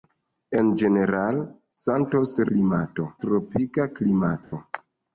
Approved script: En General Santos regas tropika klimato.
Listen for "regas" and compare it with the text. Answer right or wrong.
wrong